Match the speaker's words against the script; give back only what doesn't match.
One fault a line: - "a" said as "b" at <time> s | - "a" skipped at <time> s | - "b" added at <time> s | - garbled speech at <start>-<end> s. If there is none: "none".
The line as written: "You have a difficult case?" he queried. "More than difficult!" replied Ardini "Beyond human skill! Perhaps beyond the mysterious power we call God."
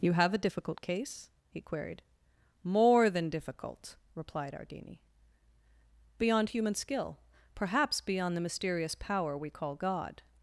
none